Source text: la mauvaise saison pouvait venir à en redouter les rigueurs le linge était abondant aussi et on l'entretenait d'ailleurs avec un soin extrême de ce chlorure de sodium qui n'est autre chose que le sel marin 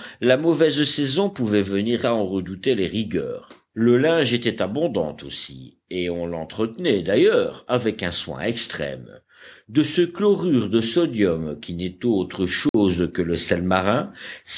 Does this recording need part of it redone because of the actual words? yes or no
no